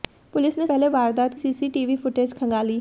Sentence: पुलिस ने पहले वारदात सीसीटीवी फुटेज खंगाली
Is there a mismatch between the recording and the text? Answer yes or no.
no